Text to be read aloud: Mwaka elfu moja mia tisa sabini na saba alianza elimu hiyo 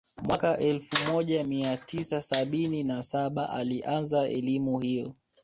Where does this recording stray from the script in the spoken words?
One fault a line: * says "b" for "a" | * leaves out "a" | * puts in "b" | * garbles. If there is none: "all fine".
all fine